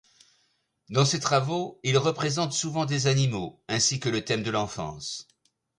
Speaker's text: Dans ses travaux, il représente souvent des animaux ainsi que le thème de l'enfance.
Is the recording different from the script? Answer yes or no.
no